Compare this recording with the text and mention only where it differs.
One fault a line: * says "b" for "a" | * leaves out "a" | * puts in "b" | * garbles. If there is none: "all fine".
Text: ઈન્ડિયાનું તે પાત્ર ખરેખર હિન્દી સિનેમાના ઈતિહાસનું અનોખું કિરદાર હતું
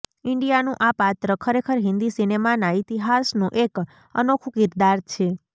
* says "આ" for "તે"
* puts in "એક"
* says "છે" for "હતું"